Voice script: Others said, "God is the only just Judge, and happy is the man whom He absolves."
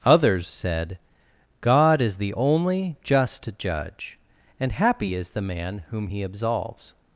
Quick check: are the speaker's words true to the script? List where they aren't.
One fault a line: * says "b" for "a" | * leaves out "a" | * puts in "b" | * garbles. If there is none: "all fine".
all fine